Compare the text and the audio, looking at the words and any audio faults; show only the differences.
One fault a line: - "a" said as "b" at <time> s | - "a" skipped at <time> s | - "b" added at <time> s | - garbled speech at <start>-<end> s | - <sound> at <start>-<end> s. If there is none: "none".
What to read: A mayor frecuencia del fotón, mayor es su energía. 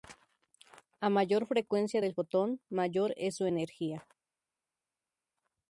none